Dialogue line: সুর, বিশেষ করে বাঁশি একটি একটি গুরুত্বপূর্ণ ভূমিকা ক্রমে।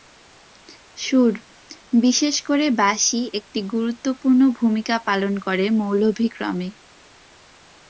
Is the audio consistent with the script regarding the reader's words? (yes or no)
no